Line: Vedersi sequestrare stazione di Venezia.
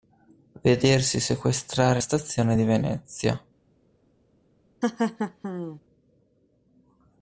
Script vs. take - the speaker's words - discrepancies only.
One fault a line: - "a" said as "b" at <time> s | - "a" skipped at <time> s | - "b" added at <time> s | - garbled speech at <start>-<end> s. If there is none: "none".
none